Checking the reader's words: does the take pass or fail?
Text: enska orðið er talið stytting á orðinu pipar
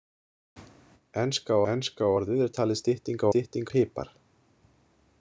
fail